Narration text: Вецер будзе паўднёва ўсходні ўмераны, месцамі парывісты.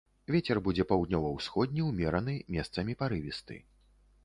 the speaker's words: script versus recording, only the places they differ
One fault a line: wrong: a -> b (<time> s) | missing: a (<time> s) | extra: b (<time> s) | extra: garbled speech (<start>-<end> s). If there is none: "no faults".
no faults